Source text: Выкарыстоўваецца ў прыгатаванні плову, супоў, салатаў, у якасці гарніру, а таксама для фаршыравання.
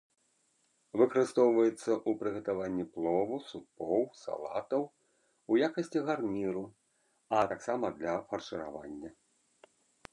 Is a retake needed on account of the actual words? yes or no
no